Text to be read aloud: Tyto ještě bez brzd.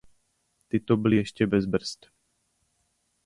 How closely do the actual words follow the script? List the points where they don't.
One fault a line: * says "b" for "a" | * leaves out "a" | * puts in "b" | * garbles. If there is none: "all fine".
* puts in "byly"